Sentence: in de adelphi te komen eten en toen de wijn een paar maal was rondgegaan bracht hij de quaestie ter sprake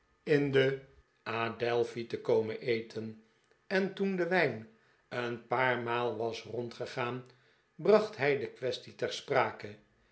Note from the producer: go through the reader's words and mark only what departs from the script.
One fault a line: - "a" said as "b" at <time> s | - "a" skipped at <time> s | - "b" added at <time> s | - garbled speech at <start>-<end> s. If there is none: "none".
none